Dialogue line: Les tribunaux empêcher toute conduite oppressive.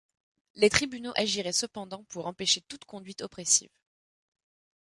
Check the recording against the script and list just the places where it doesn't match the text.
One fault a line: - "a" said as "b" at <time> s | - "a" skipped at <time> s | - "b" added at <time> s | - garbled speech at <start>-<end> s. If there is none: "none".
- "agiraient cependant pour" added at 1.1 s